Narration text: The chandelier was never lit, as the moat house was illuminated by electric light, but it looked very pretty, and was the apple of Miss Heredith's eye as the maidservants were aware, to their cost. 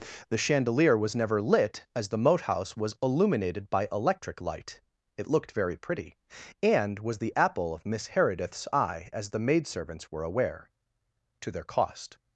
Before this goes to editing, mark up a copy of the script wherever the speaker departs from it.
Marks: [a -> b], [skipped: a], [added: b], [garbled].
The chandelier was never lit, as the moat house was illuminated by electric light, [skipped: but] it looked very pretty, and was the apple of Miss Heredith's eye as the maidservants were aware, to their cost.